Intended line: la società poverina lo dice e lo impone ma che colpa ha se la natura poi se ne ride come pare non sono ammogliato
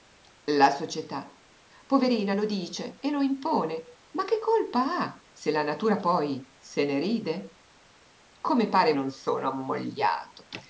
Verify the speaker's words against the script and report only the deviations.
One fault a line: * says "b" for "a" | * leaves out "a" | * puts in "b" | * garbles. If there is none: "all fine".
all fine